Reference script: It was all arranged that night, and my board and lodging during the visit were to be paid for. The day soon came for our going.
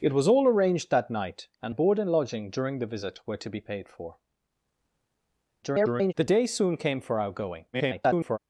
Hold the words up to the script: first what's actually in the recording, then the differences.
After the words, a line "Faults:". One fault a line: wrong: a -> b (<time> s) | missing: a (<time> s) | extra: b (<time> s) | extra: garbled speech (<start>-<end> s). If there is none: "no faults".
It was all arranged that night, and board and lodging during the visit were to be paid for. [garbled] The day soon came for our going. [garbled]
Faults:
missing: my (1.8 s)
extra: garbled speech (5.6-6.1 s)
extra: garbled speech (7.7-8.4 s)